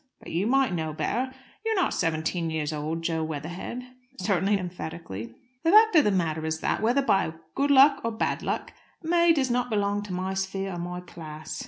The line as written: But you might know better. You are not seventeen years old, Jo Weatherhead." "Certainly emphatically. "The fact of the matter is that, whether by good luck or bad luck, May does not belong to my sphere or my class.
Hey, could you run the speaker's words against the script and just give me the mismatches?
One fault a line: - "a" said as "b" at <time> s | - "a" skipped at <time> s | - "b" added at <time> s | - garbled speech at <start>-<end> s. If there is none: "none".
none